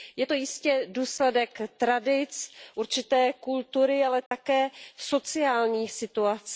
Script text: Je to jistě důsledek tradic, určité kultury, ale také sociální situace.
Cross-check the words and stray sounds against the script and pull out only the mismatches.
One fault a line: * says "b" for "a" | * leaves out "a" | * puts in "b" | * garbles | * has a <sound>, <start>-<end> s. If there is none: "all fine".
* has a dropout, 4.3-4.3 s